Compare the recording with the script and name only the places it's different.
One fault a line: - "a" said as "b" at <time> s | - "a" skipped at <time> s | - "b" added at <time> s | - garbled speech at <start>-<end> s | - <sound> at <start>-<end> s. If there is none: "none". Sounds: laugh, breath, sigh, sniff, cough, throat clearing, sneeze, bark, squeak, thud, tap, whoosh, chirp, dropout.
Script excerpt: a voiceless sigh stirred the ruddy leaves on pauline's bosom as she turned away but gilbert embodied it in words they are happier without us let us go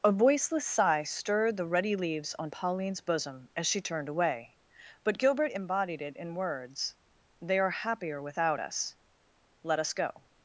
none